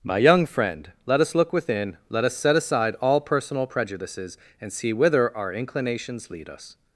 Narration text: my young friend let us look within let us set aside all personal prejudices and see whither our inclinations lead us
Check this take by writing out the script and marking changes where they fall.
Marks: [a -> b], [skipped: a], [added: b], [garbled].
my young friend let us look within let us set aside all personal prejudices and see whither our inclinations lead us